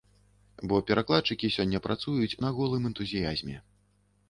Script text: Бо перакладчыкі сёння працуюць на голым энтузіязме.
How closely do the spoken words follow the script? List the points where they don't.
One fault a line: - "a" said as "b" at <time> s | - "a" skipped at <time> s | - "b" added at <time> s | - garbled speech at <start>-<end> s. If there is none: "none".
none